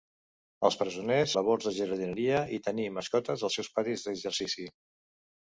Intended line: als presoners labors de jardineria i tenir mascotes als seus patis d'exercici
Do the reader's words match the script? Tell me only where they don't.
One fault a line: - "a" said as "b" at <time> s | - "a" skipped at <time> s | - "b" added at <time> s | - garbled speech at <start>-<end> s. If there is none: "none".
none